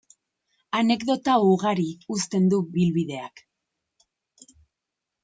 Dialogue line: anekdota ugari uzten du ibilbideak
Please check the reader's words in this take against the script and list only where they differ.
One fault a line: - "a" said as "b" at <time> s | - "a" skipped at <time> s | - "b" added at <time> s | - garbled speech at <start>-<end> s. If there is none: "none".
none